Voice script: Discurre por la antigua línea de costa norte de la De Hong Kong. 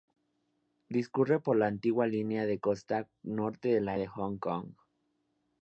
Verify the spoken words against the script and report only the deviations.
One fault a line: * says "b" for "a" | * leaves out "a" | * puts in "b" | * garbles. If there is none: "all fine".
all fine